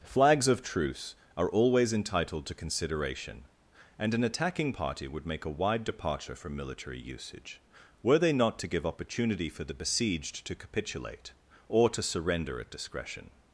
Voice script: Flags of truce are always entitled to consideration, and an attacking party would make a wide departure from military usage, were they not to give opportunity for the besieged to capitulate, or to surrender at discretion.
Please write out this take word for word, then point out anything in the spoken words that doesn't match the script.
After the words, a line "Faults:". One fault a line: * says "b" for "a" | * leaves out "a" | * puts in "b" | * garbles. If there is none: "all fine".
Flags of truce are always entitled to consideration, and an attacking party would make a wide departure from military usage, were they not to give opportunity for the besieged to capitulate, or to surrender at discretion.
Faults:
all fine